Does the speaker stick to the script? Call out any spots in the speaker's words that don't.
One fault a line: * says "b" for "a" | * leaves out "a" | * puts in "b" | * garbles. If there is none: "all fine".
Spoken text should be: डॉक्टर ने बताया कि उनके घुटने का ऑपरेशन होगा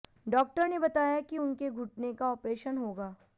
all fine